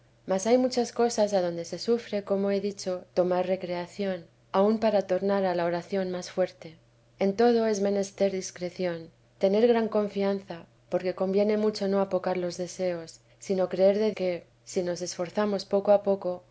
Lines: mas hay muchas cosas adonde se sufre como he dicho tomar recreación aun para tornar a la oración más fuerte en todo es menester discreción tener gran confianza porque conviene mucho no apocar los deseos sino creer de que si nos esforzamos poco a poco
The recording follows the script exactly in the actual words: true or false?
true